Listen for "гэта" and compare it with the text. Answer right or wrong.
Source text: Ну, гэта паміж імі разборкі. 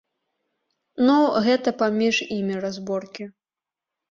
right